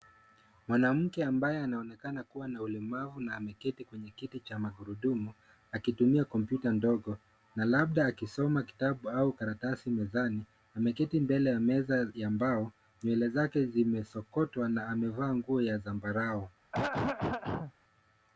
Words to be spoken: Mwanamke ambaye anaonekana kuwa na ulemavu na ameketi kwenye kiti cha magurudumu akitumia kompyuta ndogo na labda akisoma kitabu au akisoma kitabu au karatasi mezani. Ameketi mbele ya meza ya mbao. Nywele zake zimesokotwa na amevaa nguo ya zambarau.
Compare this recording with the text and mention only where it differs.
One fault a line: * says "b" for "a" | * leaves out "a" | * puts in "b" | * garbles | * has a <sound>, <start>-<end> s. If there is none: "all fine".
* leaves out "akisoma kitabu au"
* has a throat clearing, 16.7-17.7 s